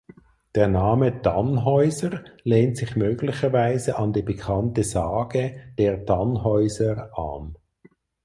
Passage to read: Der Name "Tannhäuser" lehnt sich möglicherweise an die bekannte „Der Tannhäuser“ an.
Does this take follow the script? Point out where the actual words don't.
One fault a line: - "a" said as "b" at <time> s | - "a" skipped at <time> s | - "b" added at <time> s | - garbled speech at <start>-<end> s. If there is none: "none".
- "Sage" added at 4.8 s